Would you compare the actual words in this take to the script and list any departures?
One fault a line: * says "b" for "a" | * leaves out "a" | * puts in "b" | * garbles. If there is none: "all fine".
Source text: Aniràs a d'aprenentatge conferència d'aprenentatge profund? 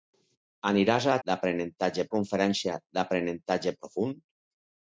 all fine